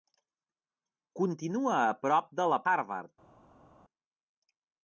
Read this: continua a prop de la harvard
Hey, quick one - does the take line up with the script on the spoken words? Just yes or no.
yes